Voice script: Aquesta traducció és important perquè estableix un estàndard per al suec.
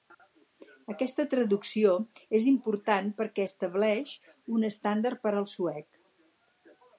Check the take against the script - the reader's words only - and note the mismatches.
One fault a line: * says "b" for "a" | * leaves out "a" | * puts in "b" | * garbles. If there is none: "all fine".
all fine